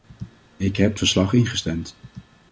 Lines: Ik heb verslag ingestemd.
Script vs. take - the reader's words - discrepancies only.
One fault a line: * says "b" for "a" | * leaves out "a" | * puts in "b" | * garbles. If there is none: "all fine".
all fine